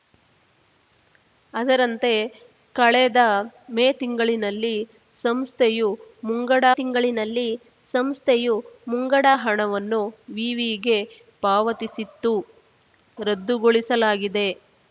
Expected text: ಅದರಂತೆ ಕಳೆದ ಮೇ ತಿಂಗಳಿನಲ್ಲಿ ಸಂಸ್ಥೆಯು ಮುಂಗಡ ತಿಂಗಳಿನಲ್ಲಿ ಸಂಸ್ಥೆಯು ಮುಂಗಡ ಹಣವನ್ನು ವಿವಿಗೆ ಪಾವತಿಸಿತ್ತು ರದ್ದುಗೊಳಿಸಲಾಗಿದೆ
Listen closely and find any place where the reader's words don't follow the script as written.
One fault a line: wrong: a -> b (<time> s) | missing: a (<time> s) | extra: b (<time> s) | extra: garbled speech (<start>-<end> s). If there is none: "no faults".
no faults